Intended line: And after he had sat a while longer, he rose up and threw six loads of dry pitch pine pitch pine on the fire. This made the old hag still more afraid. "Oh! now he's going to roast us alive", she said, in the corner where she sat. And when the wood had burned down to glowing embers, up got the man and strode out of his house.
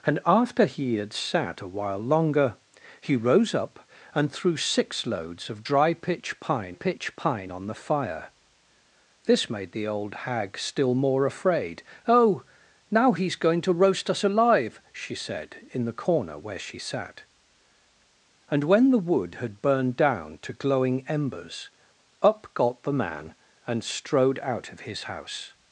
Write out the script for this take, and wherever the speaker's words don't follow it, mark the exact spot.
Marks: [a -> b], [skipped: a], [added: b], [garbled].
And after he had sat a while longer, he rose up and threw six loads of dry pitch pine pitch pine on the fire. This made the old hag still more afraid. "Oh! now he's going to roast us alive", she said, in the corner where she sat. And when the wood had burned down to glowing embers, up got the man and strode out of his house.